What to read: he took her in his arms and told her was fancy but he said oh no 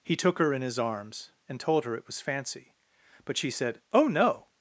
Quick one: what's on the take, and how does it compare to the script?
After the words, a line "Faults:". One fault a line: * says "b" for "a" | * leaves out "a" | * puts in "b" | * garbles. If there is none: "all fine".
he took her in his arms and told her it was fancy but she said oh no
Faults:
* puts in "it"
* says "she" for "he"